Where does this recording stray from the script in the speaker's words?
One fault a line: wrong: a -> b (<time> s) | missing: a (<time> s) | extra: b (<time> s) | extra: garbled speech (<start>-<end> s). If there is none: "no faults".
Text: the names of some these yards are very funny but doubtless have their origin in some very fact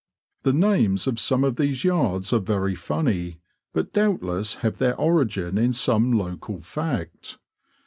extra: of (1.4 s)
wrong: very -> local (6.2 s)